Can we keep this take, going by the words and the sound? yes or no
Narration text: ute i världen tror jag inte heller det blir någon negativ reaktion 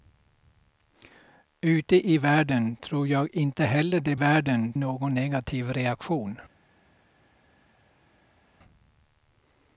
no